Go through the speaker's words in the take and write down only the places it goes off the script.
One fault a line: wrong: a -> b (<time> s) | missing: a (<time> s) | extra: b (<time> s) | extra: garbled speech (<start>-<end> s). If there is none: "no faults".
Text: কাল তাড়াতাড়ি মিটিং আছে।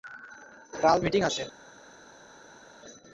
missing: তাড়াতাড়ি (1.0 s)